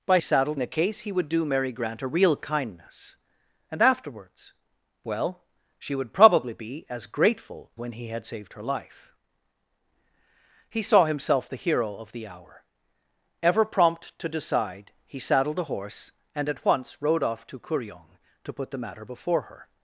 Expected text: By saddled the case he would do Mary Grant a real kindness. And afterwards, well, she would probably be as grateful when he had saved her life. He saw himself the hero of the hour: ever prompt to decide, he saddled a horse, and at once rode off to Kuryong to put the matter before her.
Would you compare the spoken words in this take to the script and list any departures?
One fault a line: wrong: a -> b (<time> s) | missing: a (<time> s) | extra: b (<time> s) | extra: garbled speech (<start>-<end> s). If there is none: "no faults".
no faults